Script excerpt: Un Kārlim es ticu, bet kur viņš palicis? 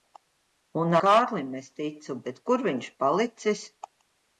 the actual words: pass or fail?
pass